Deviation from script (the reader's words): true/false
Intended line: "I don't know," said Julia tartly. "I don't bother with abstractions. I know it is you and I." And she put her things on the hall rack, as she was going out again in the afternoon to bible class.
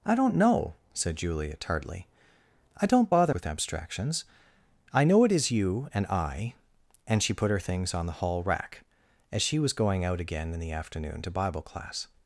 false